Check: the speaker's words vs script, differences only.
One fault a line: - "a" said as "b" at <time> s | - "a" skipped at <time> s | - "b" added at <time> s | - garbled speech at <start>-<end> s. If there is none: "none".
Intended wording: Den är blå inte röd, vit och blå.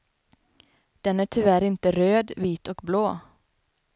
- "blå" said as "tyvärr" at 1.2 s